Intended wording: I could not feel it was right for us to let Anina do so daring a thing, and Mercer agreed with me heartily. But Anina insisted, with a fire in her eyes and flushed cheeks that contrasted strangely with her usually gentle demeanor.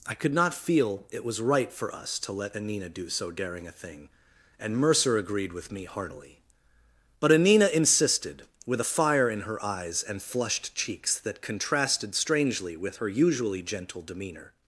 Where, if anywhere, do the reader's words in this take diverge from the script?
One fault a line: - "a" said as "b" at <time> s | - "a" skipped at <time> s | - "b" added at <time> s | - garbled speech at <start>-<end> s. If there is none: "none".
none